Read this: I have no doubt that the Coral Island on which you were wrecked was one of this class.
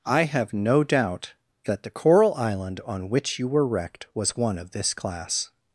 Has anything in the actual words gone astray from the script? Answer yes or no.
no